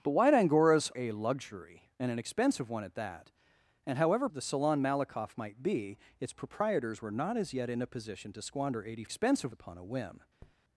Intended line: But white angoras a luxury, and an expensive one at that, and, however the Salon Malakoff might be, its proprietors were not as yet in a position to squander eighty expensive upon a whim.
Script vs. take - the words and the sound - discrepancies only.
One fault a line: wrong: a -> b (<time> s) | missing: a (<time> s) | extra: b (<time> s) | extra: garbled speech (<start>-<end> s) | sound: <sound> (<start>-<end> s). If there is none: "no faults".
sound: tap (10.4-10.6 s)